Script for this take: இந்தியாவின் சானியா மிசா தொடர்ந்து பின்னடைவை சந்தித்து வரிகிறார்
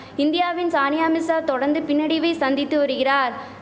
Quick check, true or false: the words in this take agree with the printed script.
true